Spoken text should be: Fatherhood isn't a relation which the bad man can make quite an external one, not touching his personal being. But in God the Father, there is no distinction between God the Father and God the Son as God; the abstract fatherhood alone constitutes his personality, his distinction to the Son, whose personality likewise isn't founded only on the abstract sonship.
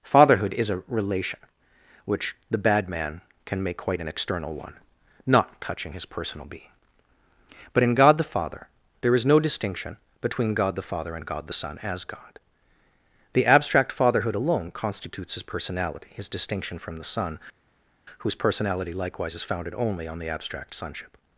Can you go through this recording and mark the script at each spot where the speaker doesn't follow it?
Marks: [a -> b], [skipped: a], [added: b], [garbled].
Fatherhood [isn't -> is] a relation which the bad man can make quite an external one, not touching his personal being. But in God the Father, there is no distinction between God the Father and God the Son as God; the abstract fatherhood alone constitutes his personality, his distinction [to -> from] the Son, whose personality likewise [isn't -> is] founded only on the abstract sonship.